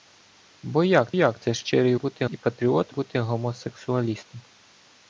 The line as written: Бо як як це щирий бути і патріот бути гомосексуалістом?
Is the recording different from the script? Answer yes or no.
no